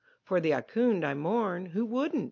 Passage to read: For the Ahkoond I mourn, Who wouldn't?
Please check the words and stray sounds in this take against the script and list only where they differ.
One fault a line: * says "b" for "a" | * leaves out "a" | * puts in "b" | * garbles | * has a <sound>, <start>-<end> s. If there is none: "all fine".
all fine